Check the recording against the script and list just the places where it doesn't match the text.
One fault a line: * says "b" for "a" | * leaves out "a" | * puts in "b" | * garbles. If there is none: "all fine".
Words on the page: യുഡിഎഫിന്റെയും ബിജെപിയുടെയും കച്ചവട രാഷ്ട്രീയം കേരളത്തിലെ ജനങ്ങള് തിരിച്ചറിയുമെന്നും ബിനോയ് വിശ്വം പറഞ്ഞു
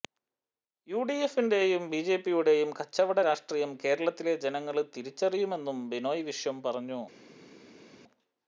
all fine